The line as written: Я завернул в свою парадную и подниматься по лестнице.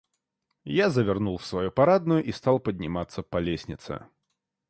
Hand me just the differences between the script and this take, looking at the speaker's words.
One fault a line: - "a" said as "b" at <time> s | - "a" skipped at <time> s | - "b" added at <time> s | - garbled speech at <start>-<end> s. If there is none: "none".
- "стал" added at 2.3 s